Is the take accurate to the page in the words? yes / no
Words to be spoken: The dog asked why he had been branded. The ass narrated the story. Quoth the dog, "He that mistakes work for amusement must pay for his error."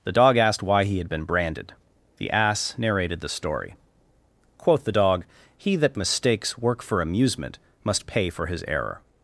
yes